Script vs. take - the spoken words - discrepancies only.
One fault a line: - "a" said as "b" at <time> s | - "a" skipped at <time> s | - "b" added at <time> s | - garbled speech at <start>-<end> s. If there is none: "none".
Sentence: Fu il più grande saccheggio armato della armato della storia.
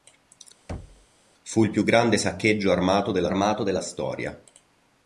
none